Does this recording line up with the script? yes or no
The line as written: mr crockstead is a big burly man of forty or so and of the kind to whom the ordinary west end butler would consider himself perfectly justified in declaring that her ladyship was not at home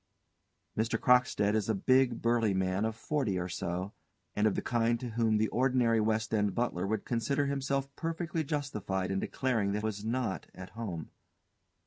no